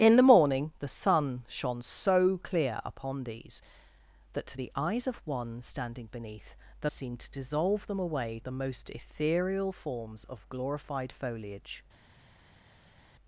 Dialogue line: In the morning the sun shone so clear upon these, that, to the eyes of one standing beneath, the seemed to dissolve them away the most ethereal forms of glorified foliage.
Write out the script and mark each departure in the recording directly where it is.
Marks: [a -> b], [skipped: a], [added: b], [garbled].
In the morning the sun shone so clear upon these, that, to the eyes of one standing beneath, the seemed to dissolve them away the most ethereal forms of glorified foliage.